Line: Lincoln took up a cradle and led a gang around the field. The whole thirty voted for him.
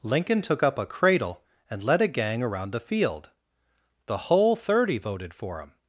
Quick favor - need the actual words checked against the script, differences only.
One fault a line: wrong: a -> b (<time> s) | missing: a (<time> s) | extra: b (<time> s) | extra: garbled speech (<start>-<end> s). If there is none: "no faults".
no faults